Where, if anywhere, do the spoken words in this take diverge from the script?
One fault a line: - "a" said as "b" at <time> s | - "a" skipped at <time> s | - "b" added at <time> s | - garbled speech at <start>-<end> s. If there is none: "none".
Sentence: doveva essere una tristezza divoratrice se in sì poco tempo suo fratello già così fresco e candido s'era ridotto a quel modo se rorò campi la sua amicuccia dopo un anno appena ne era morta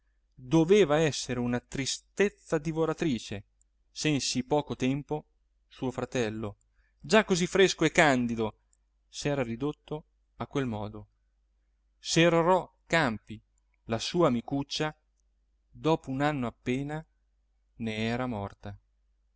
none